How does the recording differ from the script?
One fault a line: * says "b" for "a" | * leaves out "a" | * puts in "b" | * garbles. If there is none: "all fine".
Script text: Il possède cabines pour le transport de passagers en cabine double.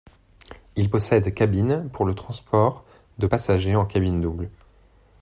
all fine